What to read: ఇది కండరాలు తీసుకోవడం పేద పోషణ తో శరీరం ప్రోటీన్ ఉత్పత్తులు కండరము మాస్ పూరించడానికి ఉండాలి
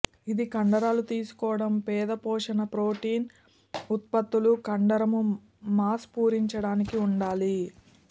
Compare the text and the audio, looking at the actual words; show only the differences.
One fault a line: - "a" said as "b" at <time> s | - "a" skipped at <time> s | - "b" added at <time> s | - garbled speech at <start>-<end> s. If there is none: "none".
- "తో శరీరం" skipped at 2.6 s